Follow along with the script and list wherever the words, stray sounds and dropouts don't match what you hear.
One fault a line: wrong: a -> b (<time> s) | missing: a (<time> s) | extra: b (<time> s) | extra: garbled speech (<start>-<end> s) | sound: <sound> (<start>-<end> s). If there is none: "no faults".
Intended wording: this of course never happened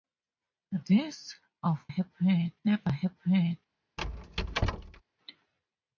wrong: course -> happened (1.9 s)
sound: squeak (4.0-5.0 s)